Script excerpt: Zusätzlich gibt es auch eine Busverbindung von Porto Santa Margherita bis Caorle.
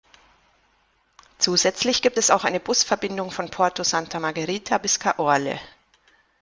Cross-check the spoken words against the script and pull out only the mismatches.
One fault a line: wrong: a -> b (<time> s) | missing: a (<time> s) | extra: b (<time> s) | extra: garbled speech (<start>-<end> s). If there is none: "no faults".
no faults